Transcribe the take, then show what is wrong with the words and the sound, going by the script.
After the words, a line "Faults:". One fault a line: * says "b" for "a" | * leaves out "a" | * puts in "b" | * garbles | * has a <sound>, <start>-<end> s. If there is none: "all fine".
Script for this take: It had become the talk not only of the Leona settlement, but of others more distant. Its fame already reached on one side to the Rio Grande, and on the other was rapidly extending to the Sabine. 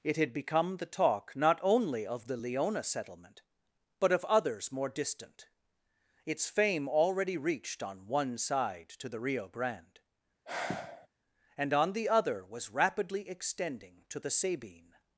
It had become the talk not only of the Leona settlement, but of others more distant. Its fame already reached on one side to the Rio Grande, and on the other was rapidly extending to the Sabine.
Faults:
* has a sigh, 10.5-11.1 s